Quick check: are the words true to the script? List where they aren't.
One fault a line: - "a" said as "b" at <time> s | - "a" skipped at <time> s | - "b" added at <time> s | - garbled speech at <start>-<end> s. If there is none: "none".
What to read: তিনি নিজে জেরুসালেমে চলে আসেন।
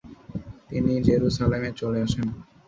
- "নিজে" skipped at 0.9 s